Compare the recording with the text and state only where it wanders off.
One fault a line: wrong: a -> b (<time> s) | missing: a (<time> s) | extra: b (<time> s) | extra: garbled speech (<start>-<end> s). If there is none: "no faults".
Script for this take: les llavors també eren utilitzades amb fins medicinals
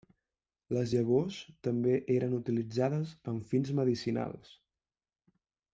no faults